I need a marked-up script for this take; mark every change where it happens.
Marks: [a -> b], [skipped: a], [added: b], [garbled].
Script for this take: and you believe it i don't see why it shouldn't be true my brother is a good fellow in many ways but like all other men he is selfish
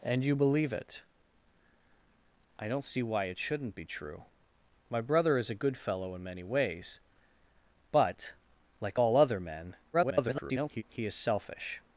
and you believe it i don't see why it shouldn't be true my brother is a good fellow in many ways but like all other men [garbled] he is selfish